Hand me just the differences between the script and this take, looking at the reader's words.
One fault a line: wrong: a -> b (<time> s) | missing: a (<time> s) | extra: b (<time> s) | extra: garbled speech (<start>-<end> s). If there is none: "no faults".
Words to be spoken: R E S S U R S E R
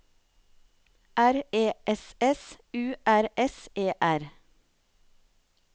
no faults